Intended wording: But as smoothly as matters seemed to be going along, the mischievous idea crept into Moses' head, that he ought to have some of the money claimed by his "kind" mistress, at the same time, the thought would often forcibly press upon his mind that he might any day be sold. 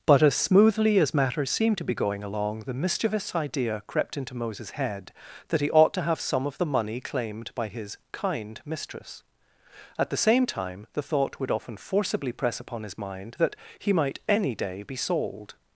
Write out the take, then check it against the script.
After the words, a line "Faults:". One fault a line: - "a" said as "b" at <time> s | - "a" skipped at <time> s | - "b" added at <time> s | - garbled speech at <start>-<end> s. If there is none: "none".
But as smoothly as matters seemed to be going along, the mischievous idea crept into Moses' head, that he ought to have some of the money claimed by his "kind" mistress, at the same time, the thought would often forcibly press upon his mind that he might any day be sold.
Faults:
none